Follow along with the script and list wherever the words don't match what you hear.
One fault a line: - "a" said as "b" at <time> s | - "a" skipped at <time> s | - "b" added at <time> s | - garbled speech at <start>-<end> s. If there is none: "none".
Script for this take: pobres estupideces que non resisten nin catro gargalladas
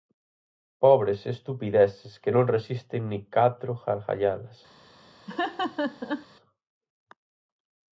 none